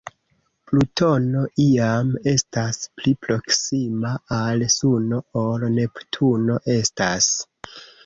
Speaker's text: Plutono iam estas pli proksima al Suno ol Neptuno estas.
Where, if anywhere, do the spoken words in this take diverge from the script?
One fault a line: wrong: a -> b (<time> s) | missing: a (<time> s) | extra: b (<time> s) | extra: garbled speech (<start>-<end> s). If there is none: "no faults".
no faults